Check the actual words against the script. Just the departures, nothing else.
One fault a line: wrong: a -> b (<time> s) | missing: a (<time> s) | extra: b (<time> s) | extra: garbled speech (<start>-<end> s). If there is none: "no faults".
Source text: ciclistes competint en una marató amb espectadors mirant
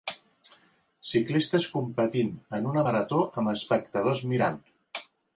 no faults